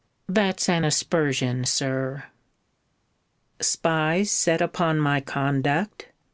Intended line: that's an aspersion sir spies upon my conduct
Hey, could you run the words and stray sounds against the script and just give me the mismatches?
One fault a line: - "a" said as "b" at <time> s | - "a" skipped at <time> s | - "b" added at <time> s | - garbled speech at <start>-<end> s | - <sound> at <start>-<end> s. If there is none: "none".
- "set" added at 4.3 s